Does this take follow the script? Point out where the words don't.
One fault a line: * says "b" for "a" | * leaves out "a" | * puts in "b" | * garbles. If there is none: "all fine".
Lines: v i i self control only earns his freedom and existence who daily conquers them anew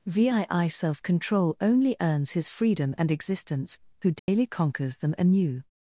all fine